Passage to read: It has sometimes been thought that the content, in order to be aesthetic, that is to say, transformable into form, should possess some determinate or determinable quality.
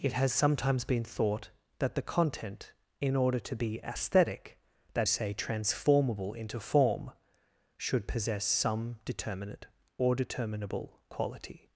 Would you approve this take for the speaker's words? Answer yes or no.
no